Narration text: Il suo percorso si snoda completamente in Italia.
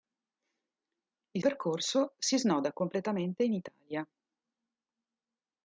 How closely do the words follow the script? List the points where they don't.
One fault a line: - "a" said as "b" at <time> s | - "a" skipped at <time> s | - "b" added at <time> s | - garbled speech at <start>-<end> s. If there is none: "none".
- "suo" skipped at 1.4 s